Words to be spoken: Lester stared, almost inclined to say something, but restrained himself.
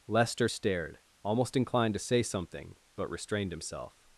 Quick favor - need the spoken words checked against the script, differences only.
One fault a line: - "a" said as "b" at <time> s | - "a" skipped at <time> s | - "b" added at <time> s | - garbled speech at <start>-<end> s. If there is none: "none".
none